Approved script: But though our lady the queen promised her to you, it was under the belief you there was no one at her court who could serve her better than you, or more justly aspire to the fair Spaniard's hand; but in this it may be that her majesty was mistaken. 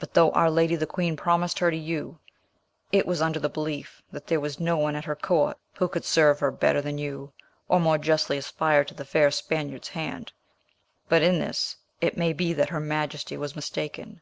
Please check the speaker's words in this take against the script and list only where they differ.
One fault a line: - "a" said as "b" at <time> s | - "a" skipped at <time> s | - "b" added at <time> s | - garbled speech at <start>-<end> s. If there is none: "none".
- "you" said as "that" at 4.1 s